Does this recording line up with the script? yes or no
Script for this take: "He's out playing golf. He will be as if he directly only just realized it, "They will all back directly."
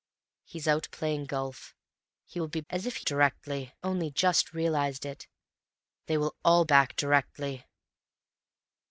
yes